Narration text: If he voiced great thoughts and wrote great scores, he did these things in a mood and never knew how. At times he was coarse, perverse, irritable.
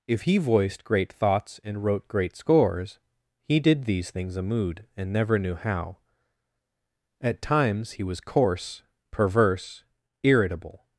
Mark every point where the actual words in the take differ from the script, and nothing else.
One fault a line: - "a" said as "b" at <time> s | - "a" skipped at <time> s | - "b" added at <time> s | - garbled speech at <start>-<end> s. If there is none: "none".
- "in" skipped at 4.4 s